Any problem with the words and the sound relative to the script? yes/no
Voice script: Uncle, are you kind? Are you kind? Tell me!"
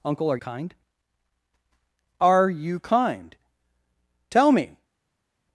yes